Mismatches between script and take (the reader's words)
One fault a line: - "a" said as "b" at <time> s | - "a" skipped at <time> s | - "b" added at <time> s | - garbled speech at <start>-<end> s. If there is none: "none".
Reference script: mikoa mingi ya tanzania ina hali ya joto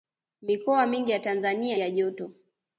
- "ina hali" skipped at 1.8 s